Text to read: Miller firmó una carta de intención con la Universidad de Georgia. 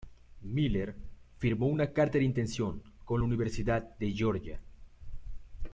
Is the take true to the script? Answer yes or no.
yes